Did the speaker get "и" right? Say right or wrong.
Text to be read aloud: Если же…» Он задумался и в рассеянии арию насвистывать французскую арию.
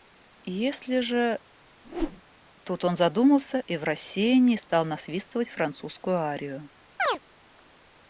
right